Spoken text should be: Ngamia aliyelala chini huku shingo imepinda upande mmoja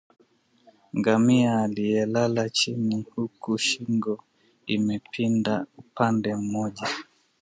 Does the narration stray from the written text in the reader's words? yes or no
no